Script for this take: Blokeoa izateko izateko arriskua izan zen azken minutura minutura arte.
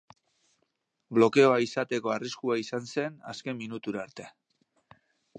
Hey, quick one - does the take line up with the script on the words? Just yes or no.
no